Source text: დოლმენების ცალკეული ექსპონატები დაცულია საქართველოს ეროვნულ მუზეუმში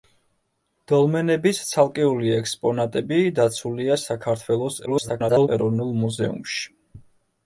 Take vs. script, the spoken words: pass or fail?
fail